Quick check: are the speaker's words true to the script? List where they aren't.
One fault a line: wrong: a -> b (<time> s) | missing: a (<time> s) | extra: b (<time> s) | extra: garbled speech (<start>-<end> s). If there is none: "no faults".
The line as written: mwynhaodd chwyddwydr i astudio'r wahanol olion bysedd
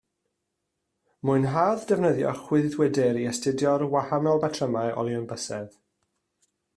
extra: defnyddio (1.9 s)
extra: batrymau (4.5 s)